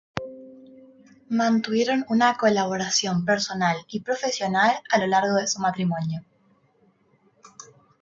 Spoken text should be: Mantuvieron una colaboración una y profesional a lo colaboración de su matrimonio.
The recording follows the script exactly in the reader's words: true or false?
false